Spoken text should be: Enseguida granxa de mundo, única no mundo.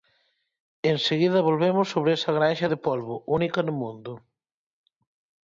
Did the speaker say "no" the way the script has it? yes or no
yes